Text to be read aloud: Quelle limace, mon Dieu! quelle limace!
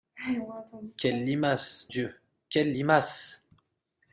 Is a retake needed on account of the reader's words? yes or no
yes